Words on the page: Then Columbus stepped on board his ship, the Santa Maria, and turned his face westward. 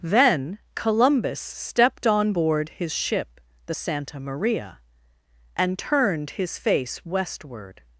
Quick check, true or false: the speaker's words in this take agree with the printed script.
true